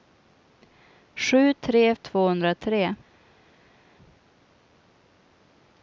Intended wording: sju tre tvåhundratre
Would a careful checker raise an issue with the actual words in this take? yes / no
no